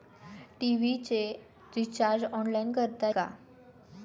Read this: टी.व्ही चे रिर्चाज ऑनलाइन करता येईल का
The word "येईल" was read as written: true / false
false